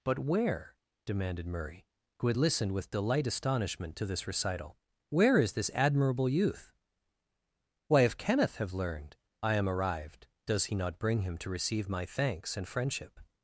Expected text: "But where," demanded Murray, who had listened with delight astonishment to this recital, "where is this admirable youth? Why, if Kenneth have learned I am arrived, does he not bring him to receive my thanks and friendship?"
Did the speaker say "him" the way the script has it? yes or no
yes